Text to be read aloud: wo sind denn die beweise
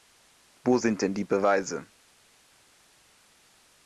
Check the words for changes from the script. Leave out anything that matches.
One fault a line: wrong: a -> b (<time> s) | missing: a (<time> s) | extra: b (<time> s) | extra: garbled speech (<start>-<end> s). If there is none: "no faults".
no faults